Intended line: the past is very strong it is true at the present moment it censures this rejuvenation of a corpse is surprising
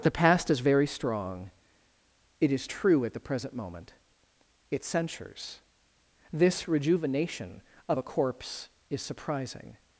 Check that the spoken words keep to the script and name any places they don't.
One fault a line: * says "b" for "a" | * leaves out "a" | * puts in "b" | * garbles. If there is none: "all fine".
all fine